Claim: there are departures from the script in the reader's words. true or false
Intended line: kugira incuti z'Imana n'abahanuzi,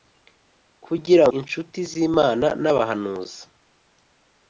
false